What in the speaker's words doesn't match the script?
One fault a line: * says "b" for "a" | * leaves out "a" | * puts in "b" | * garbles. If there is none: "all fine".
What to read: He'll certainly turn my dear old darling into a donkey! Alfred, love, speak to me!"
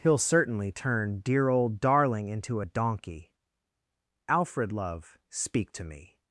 * leaves out "my"